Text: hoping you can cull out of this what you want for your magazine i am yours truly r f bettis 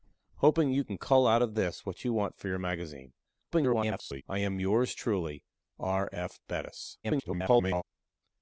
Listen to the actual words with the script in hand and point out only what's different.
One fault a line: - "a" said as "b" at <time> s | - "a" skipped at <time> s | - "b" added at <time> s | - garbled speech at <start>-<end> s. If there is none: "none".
- garbled speech at 3.5-4.2 s
- garbled speech at 7.0-7.8 s